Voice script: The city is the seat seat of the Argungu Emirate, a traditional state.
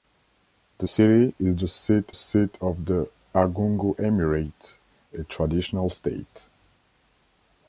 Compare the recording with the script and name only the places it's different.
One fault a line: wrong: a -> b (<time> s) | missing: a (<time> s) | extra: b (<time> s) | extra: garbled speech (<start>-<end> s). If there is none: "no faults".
no faults